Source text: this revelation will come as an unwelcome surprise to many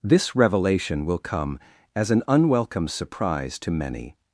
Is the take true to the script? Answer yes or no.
yes